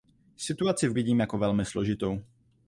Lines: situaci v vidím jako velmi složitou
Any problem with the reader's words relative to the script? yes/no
no